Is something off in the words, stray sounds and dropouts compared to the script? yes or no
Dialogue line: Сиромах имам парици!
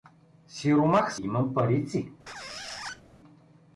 yes